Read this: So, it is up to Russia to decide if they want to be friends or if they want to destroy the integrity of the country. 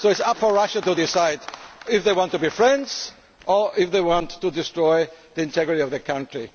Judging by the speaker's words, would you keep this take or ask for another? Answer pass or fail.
pass